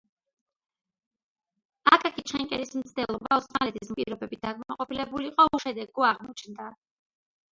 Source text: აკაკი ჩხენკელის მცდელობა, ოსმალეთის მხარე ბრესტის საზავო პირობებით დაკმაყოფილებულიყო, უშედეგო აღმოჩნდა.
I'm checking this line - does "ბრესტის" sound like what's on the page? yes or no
no